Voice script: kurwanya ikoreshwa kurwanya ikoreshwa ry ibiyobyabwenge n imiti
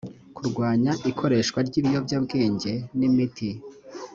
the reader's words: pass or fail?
fail